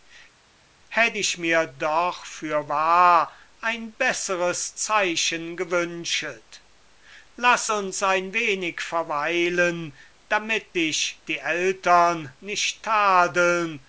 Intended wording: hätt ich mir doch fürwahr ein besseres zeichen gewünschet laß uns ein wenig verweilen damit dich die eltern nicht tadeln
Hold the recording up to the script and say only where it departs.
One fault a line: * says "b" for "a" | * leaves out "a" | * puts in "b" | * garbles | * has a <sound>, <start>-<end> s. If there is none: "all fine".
all fine